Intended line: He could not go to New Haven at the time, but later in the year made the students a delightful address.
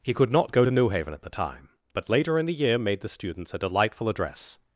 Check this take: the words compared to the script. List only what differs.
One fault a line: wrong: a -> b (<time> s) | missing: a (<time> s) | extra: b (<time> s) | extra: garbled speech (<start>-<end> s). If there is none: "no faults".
no faults